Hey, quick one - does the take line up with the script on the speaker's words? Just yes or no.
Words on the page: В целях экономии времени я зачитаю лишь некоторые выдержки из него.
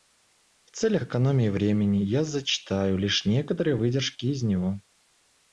yes